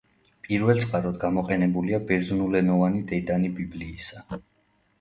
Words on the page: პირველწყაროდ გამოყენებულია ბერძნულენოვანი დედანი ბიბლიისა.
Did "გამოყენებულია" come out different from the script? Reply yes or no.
no